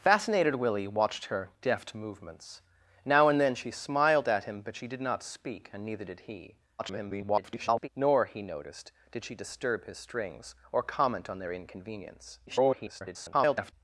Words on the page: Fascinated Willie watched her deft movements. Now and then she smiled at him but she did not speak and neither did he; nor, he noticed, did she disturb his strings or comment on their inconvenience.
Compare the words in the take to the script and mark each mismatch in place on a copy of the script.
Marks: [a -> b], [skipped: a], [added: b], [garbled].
Fascinated Willie watched her deft movements. Now and then she smiled at him but she did not speak and neither did he; [garbled] nor, he noticed, did she disturb his strings or comment on their inconvenience. [garbled]